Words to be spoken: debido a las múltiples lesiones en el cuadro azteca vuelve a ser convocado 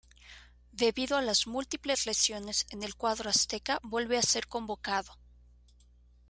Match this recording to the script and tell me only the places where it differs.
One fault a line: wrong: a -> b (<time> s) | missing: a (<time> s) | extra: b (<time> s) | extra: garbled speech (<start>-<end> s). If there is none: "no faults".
no faults